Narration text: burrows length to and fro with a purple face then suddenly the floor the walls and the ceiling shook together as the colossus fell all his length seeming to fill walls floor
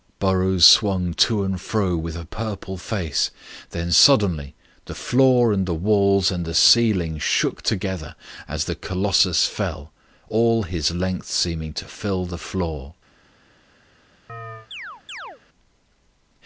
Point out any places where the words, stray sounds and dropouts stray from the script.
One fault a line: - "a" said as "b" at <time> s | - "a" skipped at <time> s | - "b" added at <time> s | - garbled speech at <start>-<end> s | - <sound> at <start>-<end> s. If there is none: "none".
- "length" said as "swung" at 0.7 s
- "and" added at 5.5 s
- "walls" said as "the" at 12.2 s
- chirp at 14.3-15.4 s